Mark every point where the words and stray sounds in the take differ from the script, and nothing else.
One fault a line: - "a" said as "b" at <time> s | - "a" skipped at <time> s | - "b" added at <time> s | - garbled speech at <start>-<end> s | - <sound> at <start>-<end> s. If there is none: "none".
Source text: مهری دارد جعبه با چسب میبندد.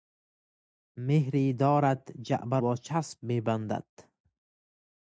none